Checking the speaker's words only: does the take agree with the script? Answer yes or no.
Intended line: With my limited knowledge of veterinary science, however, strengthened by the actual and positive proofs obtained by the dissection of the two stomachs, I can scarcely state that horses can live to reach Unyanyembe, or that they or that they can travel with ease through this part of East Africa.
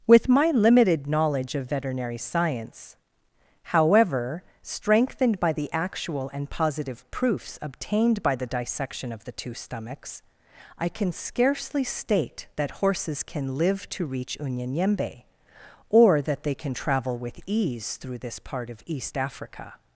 no